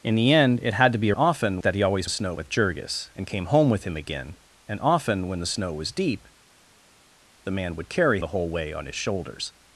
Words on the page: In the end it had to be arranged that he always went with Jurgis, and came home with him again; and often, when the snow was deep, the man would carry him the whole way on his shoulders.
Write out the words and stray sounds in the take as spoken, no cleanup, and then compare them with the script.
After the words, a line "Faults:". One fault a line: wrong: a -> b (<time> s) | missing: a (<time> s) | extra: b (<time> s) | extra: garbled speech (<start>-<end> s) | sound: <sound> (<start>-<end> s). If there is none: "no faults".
In the end it had to be often that he always snow with Jurgis, and came home with him again; and often, when the snow was deep, the man would carry the whole way on his shoulders.
Faults:
wrong: arranged -> often (1.2 s)
wrong: went -> snow (2.1 s)
missing: him (8.2 s)